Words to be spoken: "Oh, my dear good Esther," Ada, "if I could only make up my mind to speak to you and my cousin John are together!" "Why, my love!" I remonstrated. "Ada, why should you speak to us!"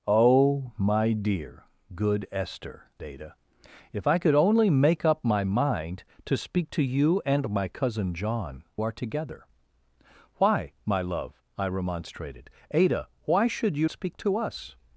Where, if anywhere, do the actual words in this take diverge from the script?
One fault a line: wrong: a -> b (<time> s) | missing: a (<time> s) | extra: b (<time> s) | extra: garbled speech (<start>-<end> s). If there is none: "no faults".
no faults